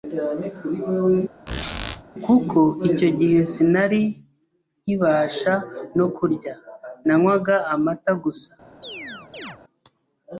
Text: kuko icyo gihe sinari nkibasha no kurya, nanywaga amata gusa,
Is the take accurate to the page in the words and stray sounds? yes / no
no